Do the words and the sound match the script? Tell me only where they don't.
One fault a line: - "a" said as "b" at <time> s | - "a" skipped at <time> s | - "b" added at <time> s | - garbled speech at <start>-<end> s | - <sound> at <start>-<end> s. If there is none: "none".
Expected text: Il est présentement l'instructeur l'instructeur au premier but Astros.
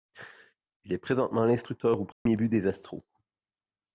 - "l'instructeur" skipped at 2.0 s
- dropout at 2.1-2.3 s
- "des" added at 2.5 s